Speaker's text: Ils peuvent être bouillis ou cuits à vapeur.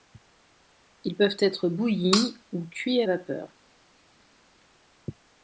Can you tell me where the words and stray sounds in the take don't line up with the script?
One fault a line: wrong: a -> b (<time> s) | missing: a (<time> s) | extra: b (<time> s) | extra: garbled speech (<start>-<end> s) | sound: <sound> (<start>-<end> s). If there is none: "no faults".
no faults